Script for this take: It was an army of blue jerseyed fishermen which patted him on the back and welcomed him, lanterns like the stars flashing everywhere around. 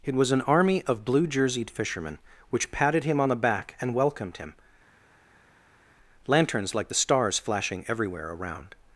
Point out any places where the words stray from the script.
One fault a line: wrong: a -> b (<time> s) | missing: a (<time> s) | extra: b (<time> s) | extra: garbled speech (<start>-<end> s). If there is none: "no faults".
no faults